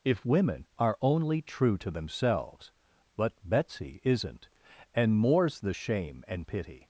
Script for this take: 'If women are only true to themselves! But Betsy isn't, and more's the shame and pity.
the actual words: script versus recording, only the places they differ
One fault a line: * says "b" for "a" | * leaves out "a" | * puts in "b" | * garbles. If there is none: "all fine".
all fine